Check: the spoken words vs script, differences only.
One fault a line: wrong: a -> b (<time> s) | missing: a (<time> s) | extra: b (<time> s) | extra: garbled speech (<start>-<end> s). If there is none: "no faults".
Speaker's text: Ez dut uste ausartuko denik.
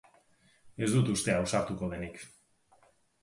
no faults